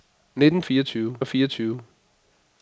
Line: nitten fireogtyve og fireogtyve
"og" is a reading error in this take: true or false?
false